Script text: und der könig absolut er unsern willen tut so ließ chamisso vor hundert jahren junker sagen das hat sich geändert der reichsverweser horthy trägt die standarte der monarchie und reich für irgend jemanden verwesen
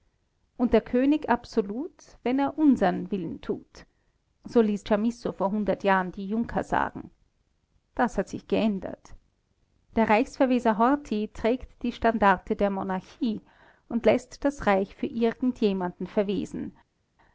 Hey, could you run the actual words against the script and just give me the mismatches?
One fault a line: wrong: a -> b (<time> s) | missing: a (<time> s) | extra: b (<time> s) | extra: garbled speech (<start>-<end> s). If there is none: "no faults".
extra: wenn (2.2 s)
extra: die (6.1 s)
extra: läßt das (14.0 s)